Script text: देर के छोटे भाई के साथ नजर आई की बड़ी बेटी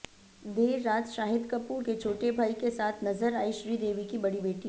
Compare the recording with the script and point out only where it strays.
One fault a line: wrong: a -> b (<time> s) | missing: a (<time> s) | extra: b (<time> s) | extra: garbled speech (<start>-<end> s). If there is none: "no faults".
extra: रात शाहिद कपूर (0.8 s)
extra: श्रीदेवी (3.5 s)